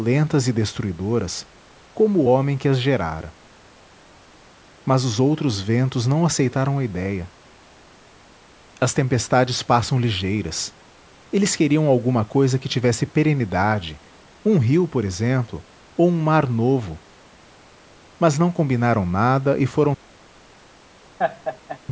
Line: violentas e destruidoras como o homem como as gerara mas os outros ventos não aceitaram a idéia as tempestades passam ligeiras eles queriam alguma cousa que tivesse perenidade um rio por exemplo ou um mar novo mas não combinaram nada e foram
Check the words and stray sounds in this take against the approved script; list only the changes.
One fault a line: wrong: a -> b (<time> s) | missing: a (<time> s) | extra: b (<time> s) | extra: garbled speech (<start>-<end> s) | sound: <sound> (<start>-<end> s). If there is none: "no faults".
wrong: como -> que (2.6 s)
sound: laugh (21.2-21.8 s)